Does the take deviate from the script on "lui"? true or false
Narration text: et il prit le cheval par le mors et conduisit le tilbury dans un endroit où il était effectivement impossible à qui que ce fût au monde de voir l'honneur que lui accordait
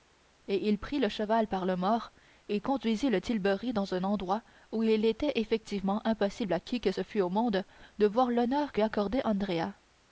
true